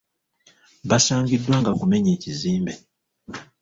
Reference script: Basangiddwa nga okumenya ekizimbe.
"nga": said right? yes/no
yes